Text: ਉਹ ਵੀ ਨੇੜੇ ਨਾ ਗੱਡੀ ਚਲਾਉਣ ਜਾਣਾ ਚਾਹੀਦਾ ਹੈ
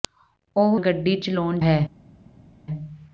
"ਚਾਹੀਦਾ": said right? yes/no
no